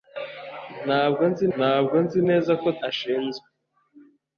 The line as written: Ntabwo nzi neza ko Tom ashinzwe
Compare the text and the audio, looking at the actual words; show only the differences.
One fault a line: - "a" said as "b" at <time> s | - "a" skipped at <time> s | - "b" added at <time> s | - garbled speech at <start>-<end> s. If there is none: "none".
- "ntabwo nzi" added at 1.6 s
- "Tom" skipped at 2.7 s